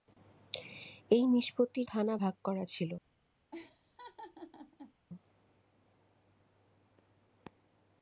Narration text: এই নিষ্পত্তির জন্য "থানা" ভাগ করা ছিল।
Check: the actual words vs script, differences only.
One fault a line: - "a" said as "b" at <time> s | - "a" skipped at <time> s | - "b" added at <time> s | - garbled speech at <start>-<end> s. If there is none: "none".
- "জন্য" skipped at 1.9 s